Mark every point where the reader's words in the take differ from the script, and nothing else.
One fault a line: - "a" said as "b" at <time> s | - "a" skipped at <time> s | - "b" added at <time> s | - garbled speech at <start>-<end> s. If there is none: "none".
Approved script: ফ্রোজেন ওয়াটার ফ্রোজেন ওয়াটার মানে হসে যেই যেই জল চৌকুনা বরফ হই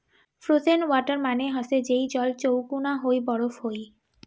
- "ফ্রোজেন ওয়াটার" skipped at 1.2 s
- "যেই" skipped at 2.0 s
- "হই" added at 3.0 s